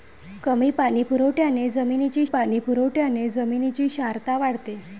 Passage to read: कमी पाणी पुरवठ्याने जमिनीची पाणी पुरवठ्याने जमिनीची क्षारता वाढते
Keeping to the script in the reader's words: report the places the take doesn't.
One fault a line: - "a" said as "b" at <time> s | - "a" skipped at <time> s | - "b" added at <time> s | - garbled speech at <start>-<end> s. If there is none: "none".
none